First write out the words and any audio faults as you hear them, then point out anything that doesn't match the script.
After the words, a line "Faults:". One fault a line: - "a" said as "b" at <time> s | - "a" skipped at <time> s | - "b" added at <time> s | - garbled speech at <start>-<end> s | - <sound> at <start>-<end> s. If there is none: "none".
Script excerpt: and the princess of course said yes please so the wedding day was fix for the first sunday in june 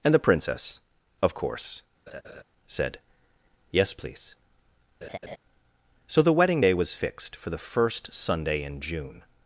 and the princess of course said yes please so the wedding day was fixed for the first sunday in june
Faults:
- laugh at 2.1-2.4 s
- laugh at 5.0-5.4 s
- "fix" said as "fixed" at 6.9 s